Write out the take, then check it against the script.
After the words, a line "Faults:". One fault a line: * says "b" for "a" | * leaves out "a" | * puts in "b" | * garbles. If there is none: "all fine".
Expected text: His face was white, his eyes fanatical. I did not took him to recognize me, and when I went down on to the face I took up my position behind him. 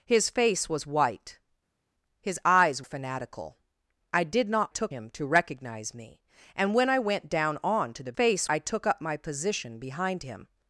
His face was white, his eyes fanatical. I did not took him to recognize me, and when I went down on to the face I took up my position behind him.
Faults:
all fine